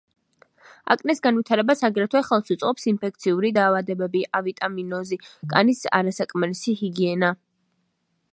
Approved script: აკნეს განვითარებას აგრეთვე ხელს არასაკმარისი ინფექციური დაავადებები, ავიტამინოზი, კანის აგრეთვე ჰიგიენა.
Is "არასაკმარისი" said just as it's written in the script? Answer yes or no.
no